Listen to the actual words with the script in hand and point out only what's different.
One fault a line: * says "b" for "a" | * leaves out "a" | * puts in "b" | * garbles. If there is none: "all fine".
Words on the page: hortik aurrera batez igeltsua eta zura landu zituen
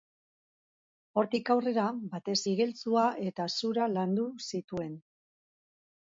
all fine